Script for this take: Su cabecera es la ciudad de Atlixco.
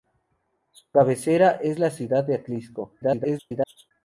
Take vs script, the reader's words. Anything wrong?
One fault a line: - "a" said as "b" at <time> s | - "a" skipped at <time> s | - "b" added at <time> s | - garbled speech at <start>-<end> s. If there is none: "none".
- garbled speech at 3.0-3.9 s